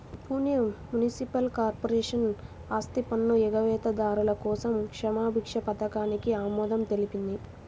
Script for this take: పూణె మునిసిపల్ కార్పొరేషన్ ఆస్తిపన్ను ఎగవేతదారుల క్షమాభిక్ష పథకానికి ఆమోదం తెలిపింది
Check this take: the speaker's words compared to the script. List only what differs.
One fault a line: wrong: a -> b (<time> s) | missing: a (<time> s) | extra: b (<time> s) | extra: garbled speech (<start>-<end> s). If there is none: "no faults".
extra: కోసం (4.4 s)